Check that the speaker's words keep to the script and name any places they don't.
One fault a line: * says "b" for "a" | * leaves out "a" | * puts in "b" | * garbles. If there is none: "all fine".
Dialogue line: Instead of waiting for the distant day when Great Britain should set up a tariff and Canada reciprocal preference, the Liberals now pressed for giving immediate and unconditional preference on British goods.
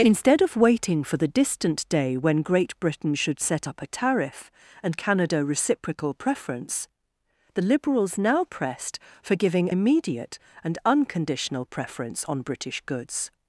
all fine